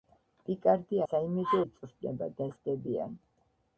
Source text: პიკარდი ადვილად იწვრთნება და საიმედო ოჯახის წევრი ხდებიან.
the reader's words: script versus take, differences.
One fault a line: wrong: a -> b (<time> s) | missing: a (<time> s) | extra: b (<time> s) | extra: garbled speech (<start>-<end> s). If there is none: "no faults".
wrong: ადვილად -> საიმედო (1.1 s)
missing: საიმედო ოჯახის წევრი (2.5 s)